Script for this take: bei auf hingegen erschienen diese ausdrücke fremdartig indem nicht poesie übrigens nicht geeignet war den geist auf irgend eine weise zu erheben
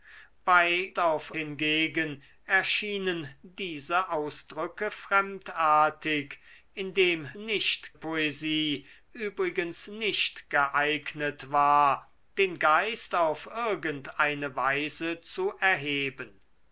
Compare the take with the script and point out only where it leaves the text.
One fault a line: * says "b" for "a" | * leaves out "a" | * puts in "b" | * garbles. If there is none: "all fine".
all fine